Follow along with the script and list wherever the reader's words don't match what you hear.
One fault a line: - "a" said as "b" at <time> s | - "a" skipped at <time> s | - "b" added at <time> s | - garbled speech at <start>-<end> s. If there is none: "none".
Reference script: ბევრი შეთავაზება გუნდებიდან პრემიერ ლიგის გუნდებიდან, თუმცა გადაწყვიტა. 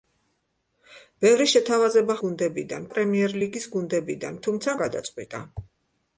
none